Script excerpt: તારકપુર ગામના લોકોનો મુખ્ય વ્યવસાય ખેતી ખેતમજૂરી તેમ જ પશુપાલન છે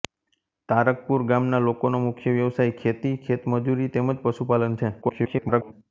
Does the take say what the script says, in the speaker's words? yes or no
no